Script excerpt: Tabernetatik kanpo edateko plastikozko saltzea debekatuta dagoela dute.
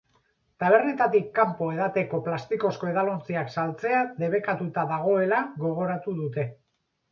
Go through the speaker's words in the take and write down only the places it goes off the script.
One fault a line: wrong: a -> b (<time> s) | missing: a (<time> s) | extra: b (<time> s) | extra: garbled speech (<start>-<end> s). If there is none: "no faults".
extra: edalontziak (2.9 s)
extra: gogoratu (5.7 s)